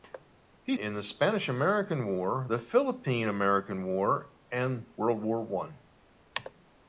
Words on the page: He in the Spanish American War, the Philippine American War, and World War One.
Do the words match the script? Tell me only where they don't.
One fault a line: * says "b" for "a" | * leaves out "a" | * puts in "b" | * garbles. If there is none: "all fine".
all fine